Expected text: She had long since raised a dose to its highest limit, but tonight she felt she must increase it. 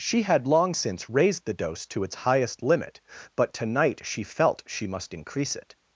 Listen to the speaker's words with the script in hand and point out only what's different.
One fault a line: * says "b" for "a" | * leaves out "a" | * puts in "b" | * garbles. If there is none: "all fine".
* says "the" for "a"